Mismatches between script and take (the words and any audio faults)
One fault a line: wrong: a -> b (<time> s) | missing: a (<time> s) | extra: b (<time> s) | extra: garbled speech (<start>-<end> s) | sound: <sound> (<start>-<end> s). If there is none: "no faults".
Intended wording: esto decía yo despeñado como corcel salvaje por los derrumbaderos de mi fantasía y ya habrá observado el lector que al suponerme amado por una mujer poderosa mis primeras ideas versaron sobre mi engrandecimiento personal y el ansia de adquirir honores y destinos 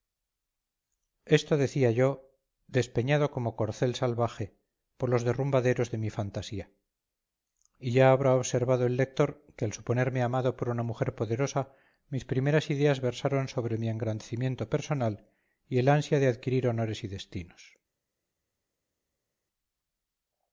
no faults